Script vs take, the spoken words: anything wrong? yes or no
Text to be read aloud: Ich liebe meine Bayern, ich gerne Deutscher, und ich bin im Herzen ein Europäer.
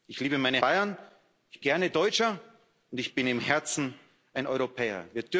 no